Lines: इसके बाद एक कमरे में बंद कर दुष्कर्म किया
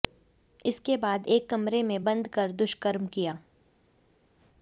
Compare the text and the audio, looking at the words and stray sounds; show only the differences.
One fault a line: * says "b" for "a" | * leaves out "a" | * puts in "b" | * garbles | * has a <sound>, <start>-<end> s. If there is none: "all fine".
all fine